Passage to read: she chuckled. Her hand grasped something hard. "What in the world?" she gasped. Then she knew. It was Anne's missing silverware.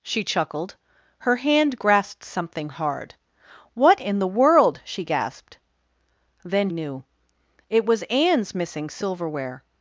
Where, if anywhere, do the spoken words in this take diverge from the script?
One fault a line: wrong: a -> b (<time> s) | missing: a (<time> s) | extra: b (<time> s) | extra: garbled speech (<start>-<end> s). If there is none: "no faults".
missing: she (6.7 s)